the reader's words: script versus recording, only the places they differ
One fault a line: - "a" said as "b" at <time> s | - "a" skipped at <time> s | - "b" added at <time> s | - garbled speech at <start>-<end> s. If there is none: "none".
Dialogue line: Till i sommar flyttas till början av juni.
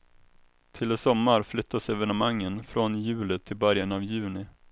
- "evenemangen från juli" added at 1.9 s